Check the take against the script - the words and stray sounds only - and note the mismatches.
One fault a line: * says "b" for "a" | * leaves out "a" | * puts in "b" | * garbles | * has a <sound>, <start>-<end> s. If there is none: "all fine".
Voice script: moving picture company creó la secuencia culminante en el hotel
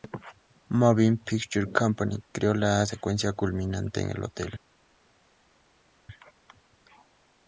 all fine